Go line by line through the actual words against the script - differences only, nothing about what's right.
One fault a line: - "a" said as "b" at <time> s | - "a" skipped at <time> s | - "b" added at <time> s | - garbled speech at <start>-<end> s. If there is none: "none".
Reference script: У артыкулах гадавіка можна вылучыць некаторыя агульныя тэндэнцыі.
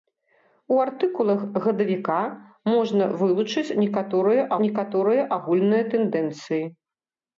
- "некаторыя" added at 4.7 s